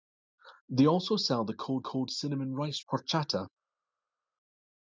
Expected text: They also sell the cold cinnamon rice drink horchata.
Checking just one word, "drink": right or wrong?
wrong